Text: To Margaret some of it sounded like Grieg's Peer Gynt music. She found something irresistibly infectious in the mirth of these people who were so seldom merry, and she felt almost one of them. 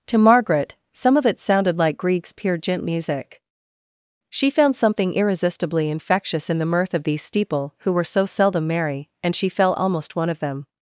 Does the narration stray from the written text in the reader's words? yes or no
yes